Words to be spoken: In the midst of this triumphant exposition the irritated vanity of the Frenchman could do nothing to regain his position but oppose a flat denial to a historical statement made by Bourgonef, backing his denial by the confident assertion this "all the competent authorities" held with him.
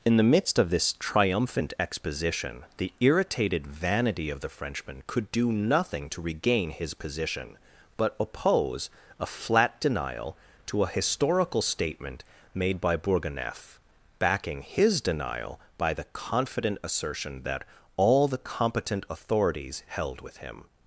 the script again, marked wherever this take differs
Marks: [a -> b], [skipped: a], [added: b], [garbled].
In the midst of this triumphant exposition the irritated vanity of the Frenchman could do nothing to regain his position but oppose a flat denial to a historical statement made by Bourgonef, backing his denial by the confident assertion [this -> that] "all the competent authorities" held with him.